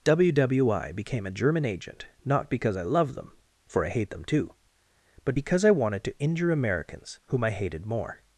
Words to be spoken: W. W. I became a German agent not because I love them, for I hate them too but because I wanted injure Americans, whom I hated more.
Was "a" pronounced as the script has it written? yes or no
yes